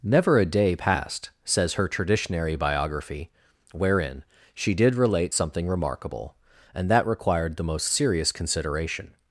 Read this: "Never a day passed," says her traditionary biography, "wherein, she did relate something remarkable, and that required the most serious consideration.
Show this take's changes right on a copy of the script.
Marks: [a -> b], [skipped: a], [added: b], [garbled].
"Never a day passed," says her traditionary biography, "wherein, she did relate something remarkable, and that required the most serious consideration.